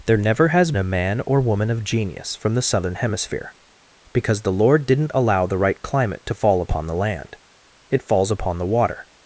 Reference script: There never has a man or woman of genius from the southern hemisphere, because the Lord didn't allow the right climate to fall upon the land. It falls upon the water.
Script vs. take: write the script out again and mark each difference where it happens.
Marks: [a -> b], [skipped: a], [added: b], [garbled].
There never has a man or woman of genius from the southern hemisphere, because the Lord didn't allow the right climate to fall upon the land. It falls upon the water.